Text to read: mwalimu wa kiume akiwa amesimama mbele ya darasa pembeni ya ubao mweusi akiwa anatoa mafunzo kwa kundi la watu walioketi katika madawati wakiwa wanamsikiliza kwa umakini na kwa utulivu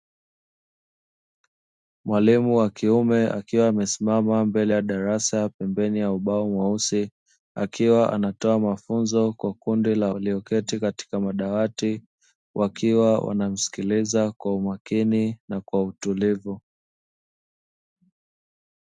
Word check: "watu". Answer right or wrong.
wrong